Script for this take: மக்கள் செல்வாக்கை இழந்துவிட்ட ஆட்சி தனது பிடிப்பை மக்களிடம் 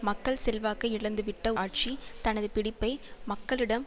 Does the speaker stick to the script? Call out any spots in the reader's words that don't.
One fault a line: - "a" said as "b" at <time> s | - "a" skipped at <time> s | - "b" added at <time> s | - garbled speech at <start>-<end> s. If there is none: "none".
none